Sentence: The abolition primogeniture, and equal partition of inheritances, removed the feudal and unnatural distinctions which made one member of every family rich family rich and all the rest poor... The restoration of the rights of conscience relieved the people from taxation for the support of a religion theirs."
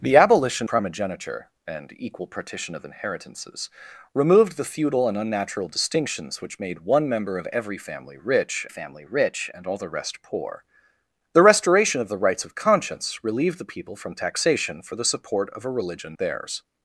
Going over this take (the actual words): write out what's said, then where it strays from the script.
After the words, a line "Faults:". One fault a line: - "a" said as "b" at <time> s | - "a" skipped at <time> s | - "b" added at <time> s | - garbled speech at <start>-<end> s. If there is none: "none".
The abolition primogeniture, and equal partition of inheritances, removed the feudal and unnatural distinctions which made one member of every family rich family rich and all the rest poor... The restoration of the rights of conscience relieved the people from taxation for the support of a religion theirs."
Faults:
none